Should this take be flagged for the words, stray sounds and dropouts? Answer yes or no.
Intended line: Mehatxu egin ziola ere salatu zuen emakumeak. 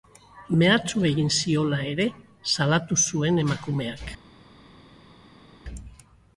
no